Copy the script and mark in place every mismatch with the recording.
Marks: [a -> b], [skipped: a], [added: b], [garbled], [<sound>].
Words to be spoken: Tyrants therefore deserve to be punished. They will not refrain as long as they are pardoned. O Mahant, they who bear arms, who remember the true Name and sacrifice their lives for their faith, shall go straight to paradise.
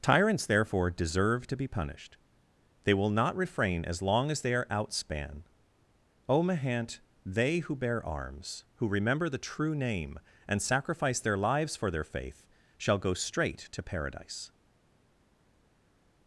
Tyrants therefore deserve to be punished. They will not refrain as long as they are [pardoned. -> outspan] O Mahant, they who bear arms, who remember the true Name and sacrifice their lives for their faith, shall go straight to paradise.